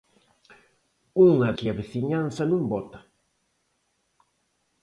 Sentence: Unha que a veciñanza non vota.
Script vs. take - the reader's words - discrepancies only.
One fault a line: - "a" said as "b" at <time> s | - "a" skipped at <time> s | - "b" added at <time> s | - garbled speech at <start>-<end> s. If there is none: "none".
none